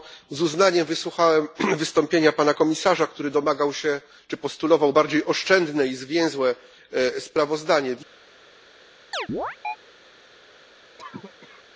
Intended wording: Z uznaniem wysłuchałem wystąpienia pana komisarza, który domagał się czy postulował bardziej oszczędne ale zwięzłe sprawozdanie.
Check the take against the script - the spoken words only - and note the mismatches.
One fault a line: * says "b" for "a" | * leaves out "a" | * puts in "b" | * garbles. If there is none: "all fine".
* says "i" for "ale"